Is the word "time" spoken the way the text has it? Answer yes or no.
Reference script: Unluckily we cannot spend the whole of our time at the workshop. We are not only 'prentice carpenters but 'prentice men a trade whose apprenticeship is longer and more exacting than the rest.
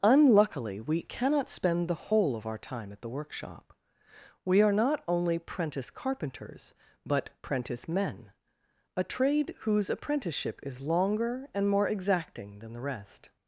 yes